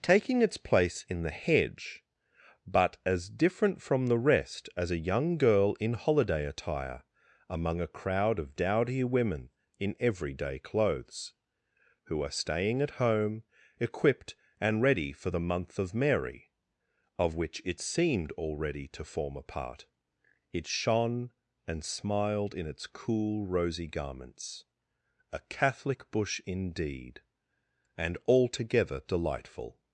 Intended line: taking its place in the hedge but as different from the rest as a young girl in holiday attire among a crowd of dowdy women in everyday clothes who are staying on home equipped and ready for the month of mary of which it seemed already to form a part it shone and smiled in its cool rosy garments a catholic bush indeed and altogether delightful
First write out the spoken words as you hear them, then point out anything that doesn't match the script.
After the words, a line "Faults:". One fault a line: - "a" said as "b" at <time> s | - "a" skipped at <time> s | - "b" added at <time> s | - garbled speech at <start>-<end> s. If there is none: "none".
taking its place in the hedge but as different from the rest as a young girl in holiday attire among a crowd of dowdy women in everyday clothes who are staying at home equipped and ready for the month of mary of which it seemed already to form a part it shone and smiled in its cool rosy garments a catholic bush indeed and altogether delightful
Faults:
- "on" said as "at" at 12.8 s